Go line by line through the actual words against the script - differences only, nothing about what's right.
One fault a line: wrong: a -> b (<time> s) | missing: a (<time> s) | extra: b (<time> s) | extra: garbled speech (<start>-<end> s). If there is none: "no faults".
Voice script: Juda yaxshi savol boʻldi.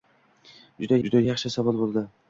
extra: juda (1.1 s)